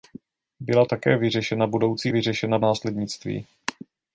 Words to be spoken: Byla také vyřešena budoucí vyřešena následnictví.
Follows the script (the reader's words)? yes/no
yes